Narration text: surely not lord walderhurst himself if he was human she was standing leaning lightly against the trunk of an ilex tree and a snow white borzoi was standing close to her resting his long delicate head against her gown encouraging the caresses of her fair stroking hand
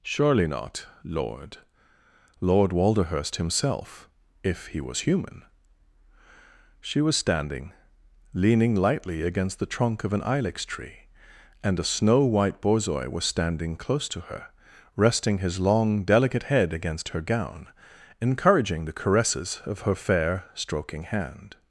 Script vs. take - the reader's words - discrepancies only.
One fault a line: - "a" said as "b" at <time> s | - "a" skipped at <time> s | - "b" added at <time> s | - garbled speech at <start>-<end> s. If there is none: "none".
- "lord" added at 2.4 s